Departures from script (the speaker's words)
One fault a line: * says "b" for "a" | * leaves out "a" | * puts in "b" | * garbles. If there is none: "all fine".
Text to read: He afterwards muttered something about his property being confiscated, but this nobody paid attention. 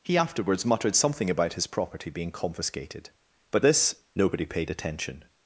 all fine